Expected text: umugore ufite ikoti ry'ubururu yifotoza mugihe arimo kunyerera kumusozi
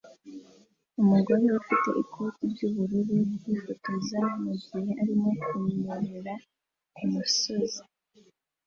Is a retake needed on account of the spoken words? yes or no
no